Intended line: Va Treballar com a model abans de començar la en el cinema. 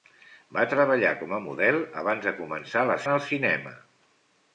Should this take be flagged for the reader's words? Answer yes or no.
no